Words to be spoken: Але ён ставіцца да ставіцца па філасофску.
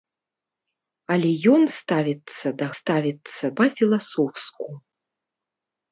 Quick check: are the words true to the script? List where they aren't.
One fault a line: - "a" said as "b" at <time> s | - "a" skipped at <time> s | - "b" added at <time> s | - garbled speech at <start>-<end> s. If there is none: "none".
none